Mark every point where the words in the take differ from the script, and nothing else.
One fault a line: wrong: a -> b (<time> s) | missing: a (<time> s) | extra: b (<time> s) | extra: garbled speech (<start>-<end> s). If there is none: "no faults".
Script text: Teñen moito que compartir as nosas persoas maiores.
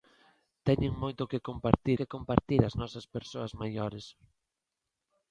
extra: que compartir (2.0 s)